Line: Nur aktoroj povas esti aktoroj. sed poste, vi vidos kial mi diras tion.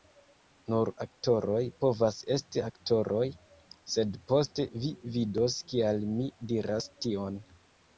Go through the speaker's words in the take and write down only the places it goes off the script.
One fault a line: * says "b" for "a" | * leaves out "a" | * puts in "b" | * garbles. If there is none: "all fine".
all fine